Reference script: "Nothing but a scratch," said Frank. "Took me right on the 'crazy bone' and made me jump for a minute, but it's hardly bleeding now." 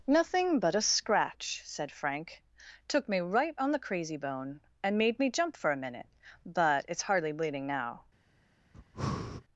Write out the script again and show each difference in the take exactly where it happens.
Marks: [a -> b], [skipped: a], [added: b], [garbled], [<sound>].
"Nothing but a scratch," said Frank. "Took me right on the 'crazy bone' and made me jump for a minute, but it's hardly bleeding now." [breath]